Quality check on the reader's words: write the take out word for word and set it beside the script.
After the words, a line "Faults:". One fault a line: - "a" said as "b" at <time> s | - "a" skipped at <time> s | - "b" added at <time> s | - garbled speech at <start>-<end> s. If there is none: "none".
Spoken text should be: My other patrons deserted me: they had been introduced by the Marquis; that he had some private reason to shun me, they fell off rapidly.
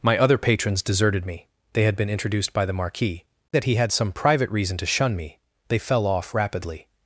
My other patrons deserted me: they had been introduced by the Marquis; that he had some private reason to shun me, they fell off rapidly.
Faults:
none